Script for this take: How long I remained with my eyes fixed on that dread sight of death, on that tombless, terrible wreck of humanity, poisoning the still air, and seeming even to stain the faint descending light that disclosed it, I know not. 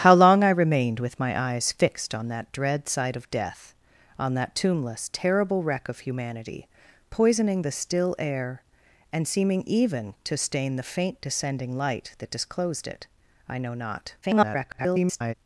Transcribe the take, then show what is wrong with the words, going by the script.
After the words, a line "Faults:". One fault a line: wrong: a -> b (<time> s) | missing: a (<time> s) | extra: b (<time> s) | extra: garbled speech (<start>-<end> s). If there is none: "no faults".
How long I remained with my eyes fixed on that dread sight of death, on that tombless, terrible wreck of humanity, poisoning the still air, and seeming even to stain the faint descending light that disclosed it, I know not. [garbled]
Faults:
extra: garbled speech (14.2-15.3 s)